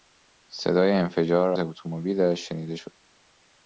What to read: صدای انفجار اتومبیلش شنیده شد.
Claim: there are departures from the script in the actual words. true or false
false